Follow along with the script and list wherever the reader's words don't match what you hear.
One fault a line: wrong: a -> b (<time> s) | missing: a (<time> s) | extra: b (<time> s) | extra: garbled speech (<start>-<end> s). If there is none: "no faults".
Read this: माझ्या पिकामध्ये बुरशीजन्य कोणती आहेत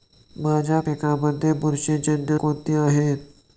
no faults